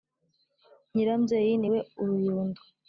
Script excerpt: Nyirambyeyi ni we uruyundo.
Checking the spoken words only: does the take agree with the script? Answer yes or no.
yes